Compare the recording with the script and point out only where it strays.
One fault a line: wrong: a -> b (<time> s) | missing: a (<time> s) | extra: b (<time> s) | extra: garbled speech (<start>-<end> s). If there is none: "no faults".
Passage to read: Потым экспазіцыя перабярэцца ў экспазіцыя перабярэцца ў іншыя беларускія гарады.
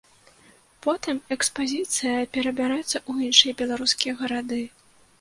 missing: экспазіцыя перабярэцца ў (3.3 s)